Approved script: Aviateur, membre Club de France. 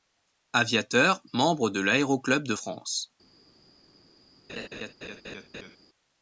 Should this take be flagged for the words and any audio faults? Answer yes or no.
yes